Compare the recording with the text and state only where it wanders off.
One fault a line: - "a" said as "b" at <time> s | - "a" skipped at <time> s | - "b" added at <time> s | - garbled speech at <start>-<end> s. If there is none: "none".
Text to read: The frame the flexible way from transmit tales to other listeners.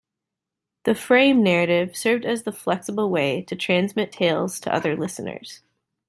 - "narrative served as" added at 1.4 s
- "from" said as "to" at 3.4 s